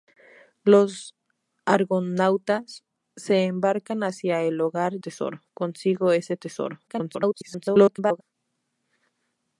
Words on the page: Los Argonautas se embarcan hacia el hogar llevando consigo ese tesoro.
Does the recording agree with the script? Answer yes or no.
no